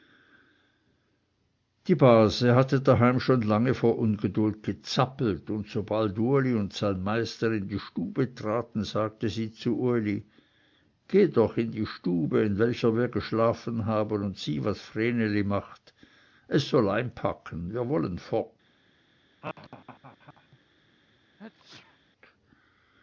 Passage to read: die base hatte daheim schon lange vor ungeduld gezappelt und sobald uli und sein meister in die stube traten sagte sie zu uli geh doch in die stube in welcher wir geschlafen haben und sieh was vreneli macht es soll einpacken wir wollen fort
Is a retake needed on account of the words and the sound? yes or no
yes